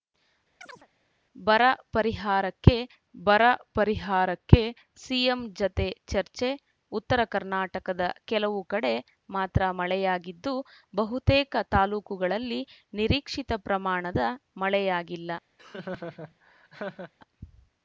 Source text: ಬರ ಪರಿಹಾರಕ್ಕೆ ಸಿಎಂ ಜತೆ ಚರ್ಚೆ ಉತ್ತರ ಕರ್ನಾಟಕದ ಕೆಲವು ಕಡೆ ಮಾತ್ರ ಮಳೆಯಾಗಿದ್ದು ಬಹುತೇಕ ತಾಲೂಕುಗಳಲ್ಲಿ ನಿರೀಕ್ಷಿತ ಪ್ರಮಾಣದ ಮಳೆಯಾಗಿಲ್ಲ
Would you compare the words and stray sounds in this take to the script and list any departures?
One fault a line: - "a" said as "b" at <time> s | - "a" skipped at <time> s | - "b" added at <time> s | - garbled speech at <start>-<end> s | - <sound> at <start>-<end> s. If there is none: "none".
- chirp at 0.6-0.9 s
- "ಬರ ಪರಿಹಾರಕ್ಕೆ" added at 3.1 s
- laugh at 15.6-17.1 s